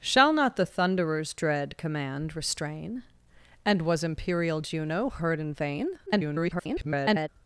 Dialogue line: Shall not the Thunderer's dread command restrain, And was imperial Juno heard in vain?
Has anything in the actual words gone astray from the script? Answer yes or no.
yes